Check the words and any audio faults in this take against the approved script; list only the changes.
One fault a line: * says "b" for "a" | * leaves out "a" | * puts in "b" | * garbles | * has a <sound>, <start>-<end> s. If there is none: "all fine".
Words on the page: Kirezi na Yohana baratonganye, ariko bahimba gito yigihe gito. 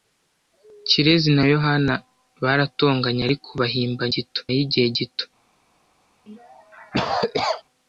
* has a cough, 6.3-7.6 s